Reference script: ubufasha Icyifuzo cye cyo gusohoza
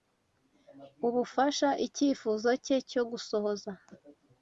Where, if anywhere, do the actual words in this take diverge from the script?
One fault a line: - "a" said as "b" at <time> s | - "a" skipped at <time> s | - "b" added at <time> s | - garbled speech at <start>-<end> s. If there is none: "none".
none